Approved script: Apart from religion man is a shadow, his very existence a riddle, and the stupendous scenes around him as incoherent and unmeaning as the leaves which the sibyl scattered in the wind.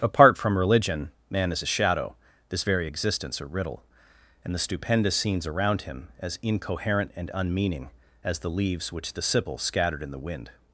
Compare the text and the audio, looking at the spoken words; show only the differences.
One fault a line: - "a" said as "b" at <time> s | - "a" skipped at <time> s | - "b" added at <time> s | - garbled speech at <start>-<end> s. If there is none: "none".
- "his" said as "this" at 2.5 s